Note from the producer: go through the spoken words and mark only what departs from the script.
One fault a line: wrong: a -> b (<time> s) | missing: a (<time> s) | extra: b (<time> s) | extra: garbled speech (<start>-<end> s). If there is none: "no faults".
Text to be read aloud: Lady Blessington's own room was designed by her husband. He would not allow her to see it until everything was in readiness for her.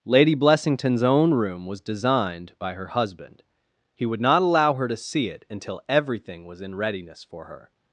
no faults